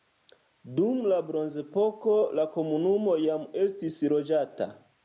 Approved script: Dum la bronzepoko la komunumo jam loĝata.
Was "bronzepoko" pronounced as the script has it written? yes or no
yes